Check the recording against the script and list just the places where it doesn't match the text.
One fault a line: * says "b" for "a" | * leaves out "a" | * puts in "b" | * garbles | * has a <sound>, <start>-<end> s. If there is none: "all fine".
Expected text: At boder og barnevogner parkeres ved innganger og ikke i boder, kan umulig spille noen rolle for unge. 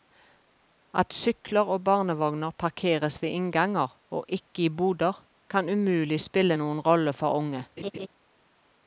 * says "sykler" for "boder"
* has a laugh, 7.8-8.1 s